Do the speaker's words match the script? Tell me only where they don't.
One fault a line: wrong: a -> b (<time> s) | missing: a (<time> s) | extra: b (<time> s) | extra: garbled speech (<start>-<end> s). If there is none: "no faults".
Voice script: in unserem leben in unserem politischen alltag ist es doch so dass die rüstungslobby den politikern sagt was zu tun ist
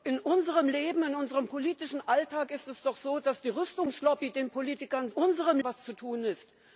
wrong: sagt -> unserem (5.1 s)